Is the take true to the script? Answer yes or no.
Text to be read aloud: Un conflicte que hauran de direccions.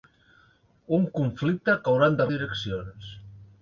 yes